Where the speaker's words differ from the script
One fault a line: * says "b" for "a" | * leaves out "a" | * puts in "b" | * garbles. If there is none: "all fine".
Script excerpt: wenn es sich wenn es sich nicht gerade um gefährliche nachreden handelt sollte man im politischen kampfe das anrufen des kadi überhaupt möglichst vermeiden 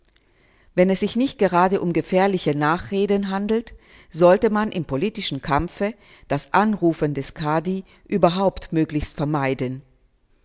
* leaves out "wenn es sich"